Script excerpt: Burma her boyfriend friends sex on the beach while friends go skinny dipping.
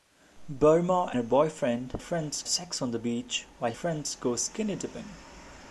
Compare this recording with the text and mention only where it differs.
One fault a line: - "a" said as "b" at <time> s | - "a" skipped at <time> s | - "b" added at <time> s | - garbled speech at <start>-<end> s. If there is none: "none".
none